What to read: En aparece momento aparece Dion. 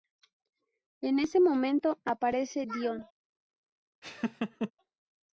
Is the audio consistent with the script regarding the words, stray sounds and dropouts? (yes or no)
no